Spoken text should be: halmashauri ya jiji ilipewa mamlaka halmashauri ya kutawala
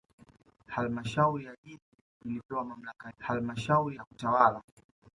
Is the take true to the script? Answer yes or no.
yes